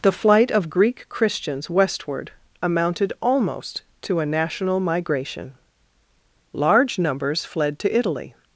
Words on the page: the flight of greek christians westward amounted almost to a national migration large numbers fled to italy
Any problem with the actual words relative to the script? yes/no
no